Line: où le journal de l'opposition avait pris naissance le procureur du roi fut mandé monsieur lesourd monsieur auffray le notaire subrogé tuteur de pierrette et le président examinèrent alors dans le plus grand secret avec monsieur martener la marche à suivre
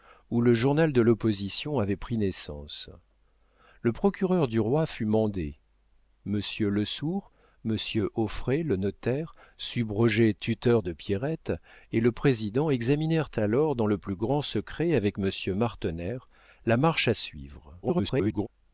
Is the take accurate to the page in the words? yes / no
no